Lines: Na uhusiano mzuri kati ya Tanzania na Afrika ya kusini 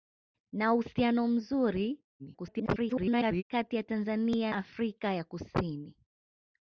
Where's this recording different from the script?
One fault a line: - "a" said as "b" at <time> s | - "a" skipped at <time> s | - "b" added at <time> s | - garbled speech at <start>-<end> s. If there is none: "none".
- garbled speech at 2.2-3.4 s
- "na" skipped at 4.5 s